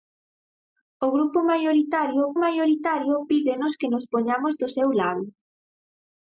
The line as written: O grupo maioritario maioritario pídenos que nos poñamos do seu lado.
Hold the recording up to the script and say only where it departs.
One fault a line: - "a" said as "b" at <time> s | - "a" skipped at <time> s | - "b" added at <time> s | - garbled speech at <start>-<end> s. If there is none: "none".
none